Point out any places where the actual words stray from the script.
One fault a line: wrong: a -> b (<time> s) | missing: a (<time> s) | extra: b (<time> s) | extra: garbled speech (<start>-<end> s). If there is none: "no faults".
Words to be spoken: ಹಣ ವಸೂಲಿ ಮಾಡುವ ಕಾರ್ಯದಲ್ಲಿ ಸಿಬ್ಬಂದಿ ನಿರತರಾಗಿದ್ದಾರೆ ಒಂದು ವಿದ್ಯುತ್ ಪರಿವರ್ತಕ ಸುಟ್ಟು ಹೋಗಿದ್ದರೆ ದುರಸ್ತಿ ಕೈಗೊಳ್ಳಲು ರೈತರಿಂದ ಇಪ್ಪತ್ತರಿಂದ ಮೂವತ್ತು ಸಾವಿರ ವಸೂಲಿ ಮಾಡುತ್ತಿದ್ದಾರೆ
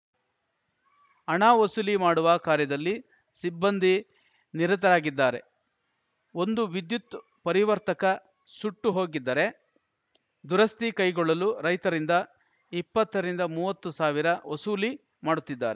no faults